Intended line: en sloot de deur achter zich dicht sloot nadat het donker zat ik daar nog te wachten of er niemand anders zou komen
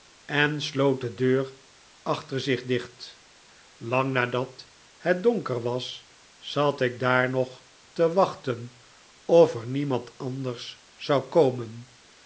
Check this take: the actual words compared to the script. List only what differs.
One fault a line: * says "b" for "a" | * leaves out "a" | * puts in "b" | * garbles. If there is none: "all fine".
* says "lang" for "sloot"
* puts in "was"